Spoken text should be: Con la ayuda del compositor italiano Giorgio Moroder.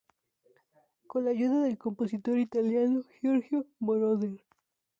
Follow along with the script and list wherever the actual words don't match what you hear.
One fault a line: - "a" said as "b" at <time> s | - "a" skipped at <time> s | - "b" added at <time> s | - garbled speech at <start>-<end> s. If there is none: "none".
none